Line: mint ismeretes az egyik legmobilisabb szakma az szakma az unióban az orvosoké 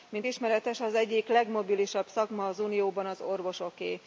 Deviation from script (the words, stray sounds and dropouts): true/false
true